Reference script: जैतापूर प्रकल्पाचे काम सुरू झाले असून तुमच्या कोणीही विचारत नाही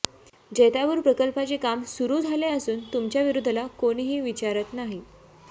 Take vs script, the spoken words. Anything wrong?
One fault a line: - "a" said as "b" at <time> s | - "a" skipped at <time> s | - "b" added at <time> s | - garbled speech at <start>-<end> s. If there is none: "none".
- "विरोधाला" added at 3.2 s